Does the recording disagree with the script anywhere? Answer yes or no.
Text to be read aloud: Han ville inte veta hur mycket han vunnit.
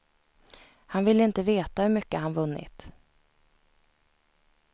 no